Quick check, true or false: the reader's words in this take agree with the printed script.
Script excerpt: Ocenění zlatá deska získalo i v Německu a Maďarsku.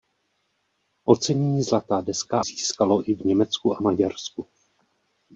true